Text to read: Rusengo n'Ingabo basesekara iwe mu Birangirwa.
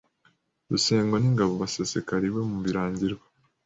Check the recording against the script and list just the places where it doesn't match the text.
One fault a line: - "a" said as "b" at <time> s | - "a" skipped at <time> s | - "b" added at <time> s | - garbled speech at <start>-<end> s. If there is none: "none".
none